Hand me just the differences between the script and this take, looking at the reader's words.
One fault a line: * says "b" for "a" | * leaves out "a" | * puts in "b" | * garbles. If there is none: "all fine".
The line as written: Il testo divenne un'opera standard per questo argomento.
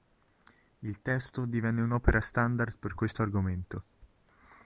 all fine